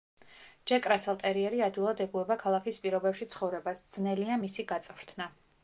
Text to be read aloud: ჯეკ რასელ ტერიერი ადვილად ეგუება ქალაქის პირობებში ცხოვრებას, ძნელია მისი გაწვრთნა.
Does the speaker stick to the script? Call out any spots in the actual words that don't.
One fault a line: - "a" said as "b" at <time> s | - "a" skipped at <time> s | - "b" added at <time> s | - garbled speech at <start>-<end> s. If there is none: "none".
none